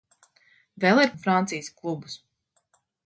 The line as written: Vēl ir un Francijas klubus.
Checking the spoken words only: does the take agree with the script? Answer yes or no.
yes